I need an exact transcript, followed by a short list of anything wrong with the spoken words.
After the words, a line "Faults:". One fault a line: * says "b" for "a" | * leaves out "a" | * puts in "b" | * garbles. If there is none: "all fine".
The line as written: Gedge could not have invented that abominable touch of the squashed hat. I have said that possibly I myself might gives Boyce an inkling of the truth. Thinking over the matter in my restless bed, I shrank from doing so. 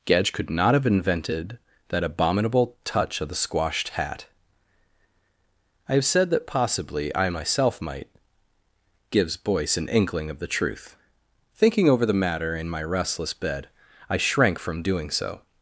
Gedge could not have invented that abominable touch of the squashed hat. I have said that possibly I myself might gives Boyce an inkling of the truth. Thinking over the matter in my restless bed, I shrank from doing so.
Faults:
all fine